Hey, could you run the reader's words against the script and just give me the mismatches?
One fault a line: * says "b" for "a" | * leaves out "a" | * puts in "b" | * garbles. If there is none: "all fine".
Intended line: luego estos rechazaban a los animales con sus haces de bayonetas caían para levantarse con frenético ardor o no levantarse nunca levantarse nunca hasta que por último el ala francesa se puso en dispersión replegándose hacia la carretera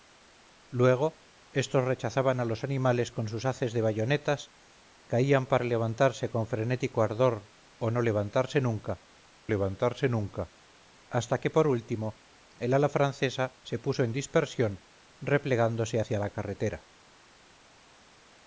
all fine